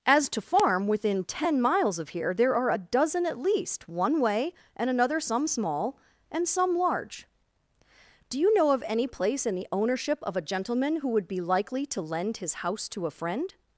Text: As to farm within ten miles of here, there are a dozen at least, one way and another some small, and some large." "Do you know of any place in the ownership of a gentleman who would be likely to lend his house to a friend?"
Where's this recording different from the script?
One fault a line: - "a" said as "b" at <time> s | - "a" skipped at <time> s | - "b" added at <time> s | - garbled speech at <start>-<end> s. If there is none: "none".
none